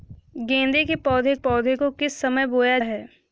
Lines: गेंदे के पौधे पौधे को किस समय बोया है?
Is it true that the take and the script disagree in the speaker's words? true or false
false